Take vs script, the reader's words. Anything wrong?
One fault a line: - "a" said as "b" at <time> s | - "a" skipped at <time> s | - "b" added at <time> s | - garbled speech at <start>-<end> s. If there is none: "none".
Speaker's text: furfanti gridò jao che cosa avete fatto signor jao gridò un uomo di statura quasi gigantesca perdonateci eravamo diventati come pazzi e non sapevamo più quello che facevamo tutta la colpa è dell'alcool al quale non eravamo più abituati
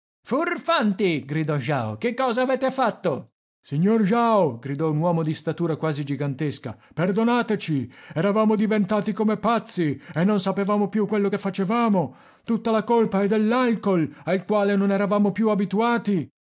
none